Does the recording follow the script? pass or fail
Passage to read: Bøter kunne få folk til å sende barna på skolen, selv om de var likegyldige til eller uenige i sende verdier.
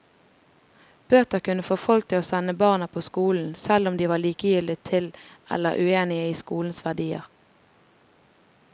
fail